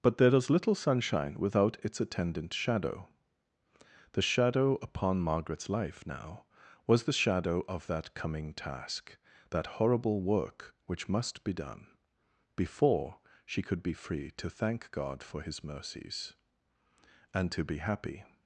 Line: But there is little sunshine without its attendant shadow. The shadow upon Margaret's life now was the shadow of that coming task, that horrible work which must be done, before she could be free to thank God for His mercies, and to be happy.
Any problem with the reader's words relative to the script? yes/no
no